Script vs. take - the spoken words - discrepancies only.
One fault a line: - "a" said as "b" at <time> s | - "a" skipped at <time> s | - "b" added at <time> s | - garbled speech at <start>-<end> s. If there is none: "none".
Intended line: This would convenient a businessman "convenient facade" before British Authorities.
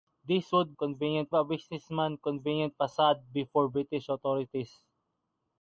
none